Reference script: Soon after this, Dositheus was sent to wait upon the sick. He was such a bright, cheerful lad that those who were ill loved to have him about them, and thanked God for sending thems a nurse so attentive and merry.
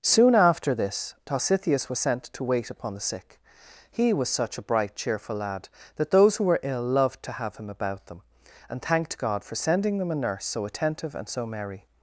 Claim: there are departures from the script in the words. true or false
true